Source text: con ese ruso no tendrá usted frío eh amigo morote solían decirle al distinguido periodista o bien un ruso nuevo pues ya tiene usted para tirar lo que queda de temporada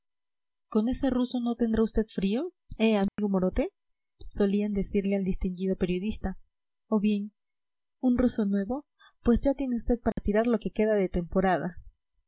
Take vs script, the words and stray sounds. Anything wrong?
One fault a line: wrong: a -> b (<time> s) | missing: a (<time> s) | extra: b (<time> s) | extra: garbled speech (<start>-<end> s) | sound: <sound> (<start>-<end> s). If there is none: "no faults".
sound: dropout (3.1-3.2 s)
sound: dropout (10.1-10.2 s)